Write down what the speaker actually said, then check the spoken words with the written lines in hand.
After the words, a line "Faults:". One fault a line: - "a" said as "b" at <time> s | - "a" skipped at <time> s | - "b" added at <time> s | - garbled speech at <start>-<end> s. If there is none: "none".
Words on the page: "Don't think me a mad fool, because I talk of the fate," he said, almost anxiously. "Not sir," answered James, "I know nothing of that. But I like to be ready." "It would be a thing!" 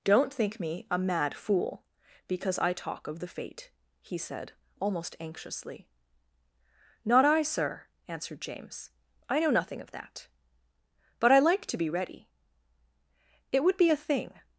"Don't think me a mad fool, because I talk of the fate," he said, almost anxiously. "Not I, sir," answered James, "I know nothing of that. But I like to be ready." "It would be a thing!"
Faults:
- "I" added at 7.2 s